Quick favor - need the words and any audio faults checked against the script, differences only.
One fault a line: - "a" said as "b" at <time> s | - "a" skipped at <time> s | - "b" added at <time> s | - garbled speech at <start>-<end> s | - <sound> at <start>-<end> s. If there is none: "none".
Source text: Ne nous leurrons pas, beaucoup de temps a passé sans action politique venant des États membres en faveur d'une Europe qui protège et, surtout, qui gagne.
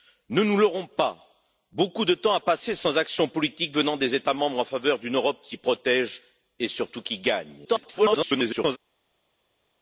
- garbled speech at 7.6-8.8 s